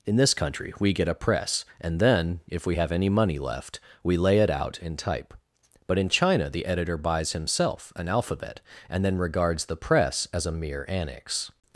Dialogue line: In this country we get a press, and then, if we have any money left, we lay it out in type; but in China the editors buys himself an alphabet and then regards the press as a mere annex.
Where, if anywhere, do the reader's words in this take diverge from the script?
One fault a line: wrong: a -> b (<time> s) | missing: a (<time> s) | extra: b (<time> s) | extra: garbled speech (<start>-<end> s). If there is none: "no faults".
wrong: editors -> editor (6.7 s)